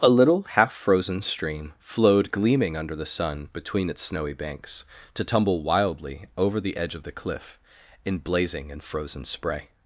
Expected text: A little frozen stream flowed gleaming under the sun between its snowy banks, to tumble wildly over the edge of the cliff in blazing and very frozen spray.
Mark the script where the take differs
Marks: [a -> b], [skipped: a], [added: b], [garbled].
A little [added: half] frozen stream flowed gleaming under the sun between its snowy banks, to tumble wildly over the edge of the cliff in blazing and [skipped: very] frozen spray.